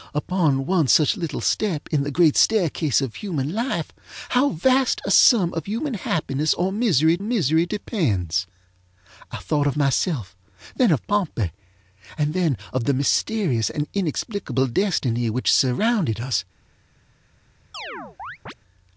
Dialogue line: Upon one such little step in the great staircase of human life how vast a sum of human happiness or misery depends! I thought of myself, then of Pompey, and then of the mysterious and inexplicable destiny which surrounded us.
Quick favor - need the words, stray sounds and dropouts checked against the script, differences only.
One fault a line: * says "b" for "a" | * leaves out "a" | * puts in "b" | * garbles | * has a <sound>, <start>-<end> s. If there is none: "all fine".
* puts in "misery"
* has a chirp, 17.7-18.5 s